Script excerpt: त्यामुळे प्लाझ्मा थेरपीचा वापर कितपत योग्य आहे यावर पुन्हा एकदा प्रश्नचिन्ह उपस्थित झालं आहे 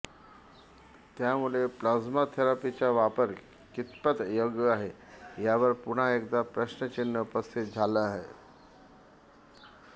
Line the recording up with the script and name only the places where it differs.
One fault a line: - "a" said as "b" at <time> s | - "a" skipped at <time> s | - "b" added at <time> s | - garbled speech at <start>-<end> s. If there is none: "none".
none